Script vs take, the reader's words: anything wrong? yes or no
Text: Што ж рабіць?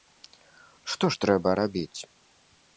yes